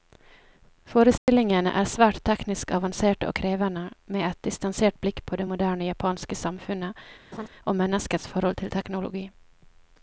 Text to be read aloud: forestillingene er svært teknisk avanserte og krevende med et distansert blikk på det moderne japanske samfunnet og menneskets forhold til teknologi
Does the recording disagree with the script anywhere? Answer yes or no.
no